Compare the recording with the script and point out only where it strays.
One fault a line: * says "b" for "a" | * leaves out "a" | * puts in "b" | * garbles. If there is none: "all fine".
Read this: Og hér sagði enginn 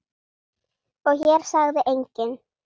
all fine